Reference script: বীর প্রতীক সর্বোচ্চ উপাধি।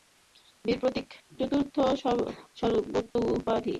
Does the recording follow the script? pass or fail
fail